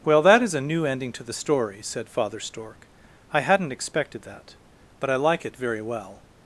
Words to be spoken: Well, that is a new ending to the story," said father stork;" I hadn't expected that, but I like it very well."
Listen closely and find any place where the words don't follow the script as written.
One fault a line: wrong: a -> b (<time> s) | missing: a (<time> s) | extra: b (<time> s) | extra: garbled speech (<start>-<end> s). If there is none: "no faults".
no faults